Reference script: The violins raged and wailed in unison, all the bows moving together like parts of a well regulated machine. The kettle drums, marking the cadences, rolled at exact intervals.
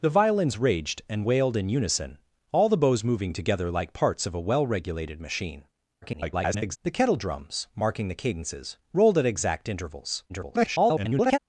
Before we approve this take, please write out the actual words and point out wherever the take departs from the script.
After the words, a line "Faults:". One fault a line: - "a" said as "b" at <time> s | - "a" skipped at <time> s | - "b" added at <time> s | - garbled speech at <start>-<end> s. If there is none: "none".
The violins raged and wailed in unison, all the bows moving together like parts of a well regulated machine. [garbled] The kettle drums, marking the cadences, rolled at exact intervals. [garbled]
Faults:
- garbled speech at 6.0-6.8 s
- garbled speech at 10.3-11.4 s